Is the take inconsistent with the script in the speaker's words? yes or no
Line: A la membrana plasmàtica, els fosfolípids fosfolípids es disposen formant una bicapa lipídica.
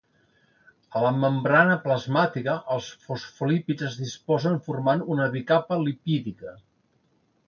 yes